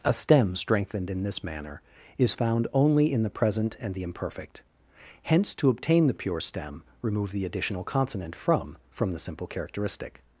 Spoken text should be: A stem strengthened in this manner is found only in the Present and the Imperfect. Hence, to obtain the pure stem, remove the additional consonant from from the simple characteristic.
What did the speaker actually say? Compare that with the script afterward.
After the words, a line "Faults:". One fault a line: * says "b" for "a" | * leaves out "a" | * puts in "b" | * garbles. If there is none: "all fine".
A stem strengthened in this manner is found only in the Present and the Imperfect. Hence, to obtain the pure stem, remove the additional consonant from from the simple characteristic.
Faults:
all fine